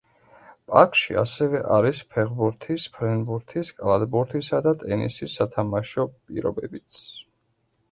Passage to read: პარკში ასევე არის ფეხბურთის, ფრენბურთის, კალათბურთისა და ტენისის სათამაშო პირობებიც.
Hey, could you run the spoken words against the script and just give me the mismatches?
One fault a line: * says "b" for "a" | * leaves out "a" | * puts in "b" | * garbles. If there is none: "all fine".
all fine